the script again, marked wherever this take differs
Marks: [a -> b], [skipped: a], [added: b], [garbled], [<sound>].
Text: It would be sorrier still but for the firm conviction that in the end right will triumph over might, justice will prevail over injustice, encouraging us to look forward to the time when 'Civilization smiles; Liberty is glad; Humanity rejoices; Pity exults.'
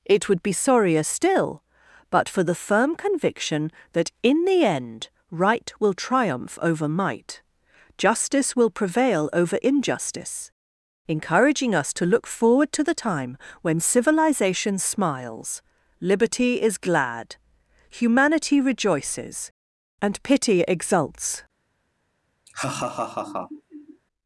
It would be sorrier still but for the firm conviction that in the end right will triumph over might, justice will prevail over injustice, encouraging us to look forward to the time when 'Civilization smiles; Liberty is glad; Humanity rejoices; [added: and] Pity exults.' [laugh]